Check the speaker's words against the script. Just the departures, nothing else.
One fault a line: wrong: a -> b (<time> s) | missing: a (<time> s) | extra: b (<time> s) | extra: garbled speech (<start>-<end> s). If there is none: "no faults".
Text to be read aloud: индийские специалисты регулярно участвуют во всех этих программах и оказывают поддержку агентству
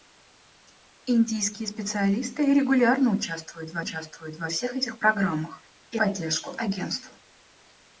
extra: участвуют во (3.8 s)
missing: оказывают (6.0 s)